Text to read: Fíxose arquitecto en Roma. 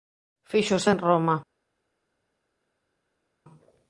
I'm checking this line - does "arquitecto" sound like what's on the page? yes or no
no